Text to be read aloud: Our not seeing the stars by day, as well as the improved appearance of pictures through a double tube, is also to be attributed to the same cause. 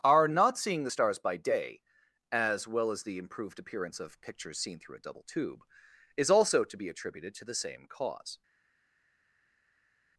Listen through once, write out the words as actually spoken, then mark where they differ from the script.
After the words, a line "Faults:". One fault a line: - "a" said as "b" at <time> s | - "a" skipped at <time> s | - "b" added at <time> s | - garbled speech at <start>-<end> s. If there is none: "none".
Our not seeing the stars by day, as well as the improved appearance of pictures seen through a double tube, is also to be attributed to the same cause.
Faults:
- "seen" added at 4.6 s